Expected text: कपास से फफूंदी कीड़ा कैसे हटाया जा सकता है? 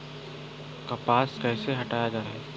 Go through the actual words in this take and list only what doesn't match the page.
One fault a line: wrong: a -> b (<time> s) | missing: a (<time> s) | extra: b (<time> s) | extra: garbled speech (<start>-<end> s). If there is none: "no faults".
missing: से फफूंदी कीड़ा (1.3 s)
missing: सकता (2.2 s)